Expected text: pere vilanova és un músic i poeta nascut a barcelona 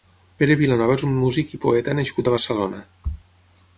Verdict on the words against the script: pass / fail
pass